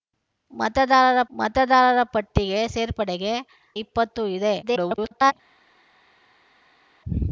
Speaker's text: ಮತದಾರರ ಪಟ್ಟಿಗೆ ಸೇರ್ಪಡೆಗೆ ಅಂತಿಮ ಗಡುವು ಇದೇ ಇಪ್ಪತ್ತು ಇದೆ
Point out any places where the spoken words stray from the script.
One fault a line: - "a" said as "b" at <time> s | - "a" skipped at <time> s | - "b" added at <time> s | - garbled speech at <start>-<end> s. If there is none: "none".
- "ಮತದಾರರ" added at 1.3 s
- "ಅಂತಿಮ ಗಡುವು ಇದೇ" skipped at 3.3 s
- garbled speech at 4.6-5.3 s